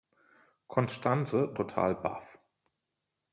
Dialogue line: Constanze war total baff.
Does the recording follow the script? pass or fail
fail